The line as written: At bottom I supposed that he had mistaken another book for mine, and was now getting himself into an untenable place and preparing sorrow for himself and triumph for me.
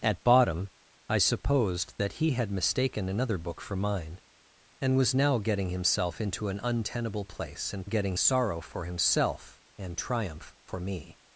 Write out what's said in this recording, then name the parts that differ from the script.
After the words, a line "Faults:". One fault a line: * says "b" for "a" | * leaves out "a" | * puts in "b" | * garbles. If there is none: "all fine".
At bottom I supposed that he had mistaken another book for mine, and was now getting himself into an untenable place and getting sorrow for himself and triumph for me.
Faults:
* says "getting" for "preparing"